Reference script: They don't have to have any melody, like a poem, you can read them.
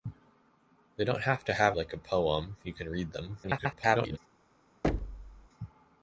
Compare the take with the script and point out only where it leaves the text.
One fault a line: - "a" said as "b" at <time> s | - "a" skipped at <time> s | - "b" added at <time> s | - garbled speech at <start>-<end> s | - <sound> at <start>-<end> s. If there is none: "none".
- "any melody" skipped at 1.8 s
- garbled speech at 3.4-4.2 s
- thud at 4.8-5.5 s